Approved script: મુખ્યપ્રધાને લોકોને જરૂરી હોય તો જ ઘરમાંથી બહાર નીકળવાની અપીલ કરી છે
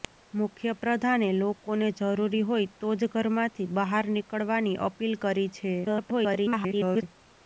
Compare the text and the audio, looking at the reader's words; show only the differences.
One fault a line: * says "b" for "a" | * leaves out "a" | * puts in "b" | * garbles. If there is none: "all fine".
* garbles